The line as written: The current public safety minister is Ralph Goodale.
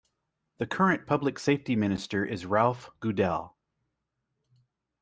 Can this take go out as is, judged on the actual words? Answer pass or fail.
pass